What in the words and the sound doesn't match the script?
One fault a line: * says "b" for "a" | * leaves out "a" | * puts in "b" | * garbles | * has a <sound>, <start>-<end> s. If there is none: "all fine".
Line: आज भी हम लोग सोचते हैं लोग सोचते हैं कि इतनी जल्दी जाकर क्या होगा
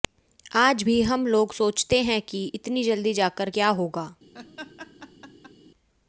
* leaves out "लोग सोचते हैं"
* has a laugh, 4.3-5.5 s